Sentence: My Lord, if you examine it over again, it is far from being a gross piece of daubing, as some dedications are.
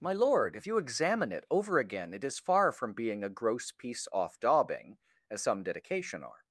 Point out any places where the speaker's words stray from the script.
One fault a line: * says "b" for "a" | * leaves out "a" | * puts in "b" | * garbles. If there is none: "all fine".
* says "off" for "of"
* says "dedication" for "dedications"